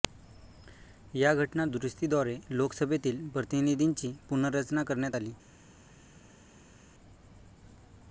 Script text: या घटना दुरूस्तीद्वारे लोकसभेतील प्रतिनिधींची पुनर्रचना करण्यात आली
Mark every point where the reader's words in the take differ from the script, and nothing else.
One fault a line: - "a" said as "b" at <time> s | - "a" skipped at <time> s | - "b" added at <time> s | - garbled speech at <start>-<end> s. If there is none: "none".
none